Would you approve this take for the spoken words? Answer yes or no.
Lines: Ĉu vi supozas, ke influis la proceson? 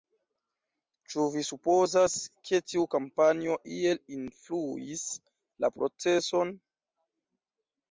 no